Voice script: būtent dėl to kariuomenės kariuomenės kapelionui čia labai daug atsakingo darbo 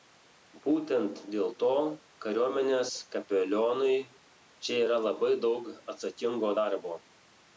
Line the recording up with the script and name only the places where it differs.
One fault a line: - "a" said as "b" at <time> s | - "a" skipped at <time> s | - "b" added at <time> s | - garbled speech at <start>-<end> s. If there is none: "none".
- "kariuomenės" skipped at 2.9 s
- "yra" added at 4.9 s